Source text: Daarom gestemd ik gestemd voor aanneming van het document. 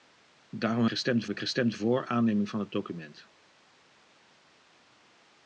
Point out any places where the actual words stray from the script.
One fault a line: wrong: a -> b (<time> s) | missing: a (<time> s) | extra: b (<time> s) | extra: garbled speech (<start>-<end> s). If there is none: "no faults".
no faults